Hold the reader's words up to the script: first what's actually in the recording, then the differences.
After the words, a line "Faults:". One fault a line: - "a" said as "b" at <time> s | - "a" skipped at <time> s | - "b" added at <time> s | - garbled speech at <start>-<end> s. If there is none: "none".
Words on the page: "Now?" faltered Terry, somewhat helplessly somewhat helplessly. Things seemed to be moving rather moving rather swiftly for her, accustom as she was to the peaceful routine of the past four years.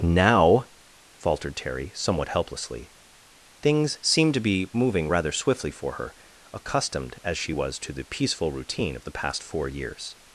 "Now?" faltered Terry, somewhat helplessly. Things seemed to be moving rather swiftly for her, accustomed as she was to the peaceful routine of the past four years.
Faults:
- "somewhat helplessly" skipped at 2.9 s
- "moving rather" skipped at 5.3 s
- "accustom" said as "accustomed" at 6.5 s